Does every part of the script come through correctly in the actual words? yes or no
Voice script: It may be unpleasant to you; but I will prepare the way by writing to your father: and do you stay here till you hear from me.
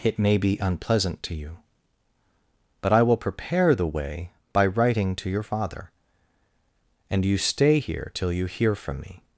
no